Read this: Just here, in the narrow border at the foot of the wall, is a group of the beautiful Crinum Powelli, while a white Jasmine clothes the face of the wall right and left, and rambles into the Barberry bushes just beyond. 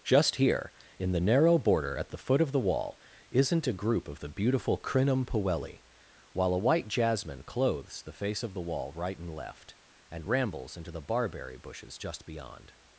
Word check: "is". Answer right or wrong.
wrong